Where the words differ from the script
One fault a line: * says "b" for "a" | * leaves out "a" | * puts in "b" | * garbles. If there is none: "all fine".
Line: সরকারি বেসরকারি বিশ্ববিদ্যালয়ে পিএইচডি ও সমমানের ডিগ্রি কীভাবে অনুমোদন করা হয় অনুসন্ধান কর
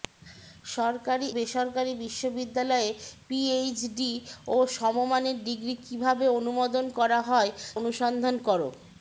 all fine